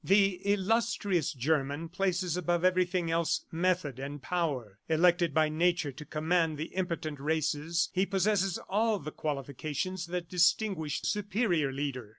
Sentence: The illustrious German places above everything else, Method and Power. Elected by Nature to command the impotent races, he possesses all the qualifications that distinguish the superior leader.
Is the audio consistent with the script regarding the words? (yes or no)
no